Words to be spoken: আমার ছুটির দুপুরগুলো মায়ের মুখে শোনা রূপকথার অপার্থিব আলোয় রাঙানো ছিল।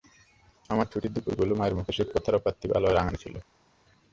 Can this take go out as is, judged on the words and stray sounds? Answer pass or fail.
fail